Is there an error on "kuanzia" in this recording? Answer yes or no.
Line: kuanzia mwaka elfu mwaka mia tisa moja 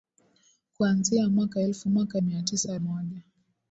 no